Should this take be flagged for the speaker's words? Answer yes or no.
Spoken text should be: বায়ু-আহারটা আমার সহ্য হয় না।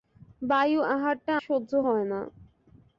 yes